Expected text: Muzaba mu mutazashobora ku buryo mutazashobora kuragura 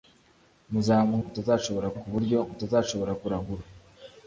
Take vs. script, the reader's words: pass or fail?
pass